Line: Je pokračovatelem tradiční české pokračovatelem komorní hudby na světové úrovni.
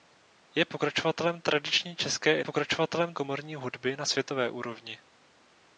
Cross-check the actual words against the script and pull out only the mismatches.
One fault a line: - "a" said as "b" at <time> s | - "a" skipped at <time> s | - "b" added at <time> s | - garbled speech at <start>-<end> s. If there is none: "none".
none